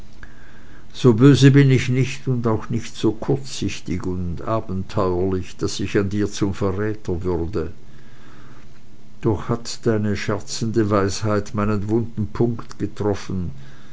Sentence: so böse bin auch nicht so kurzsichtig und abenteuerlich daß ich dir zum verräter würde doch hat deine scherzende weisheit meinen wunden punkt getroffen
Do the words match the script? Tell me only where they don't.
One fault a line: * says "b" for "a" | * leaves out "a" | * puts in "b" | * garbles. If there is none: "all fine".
* puts in "ich nicht und"
* puts in "an"